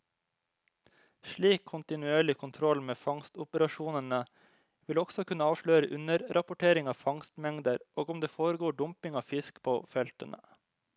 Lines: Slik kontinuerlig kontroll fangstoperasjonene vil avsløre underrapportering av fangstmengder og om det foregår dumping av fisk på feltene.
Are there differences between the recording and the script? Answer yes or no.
yes